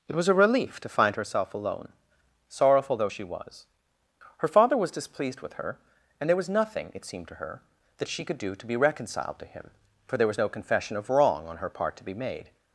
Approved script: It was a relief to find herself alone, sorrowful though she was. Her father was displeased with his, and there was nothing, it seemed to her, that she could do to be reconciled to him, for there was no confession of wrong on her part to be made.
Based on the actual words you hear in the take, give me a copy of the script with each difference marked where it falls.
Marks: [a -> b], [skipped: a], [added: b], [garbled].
It was a relief to find herself alone, sorrowful though she was. Her father was displeased with [his, -> her] and there was nothing, it seemed to her, that she could do to be reconciled to him, for there was no confession of wrong on her part to be made.